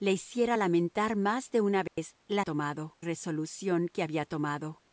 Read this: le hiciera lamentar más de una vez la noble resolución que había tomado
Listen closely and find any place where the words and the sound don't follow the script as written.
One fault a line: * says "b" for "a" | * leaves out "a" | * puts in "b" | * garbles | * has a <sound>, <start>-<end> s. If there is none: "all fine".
* has a dropout, 1.9-2.0 s
* says "tomado" for "noble"